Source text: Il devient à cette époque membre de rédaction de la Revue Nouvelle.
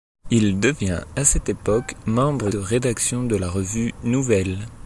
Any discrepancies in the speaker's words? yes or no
no